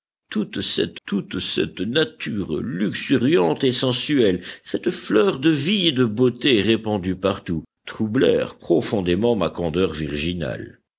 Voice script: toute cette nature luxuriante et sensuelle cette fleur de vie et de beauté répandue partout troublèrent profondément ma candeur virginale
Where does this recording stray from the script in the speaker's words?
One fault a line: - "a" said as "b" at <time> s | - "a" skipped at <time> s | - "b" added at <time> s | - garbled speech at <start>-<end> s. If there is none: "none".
- "toute cette" added at 1.1 s